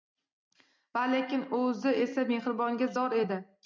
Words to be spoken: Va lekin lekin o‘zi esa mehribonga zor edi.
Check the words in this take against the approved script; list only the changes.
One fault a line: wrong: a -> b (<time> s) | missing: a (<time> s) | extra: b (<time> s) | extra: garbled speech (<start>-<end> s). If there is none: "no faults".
missing: lekin (1.4 s)